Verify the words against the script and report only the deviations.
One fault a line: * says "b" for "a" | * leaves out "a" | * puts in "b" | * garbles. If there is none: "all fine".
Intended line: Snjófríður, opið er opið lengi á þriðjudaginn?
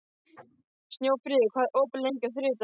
* says "hvað" for "opið"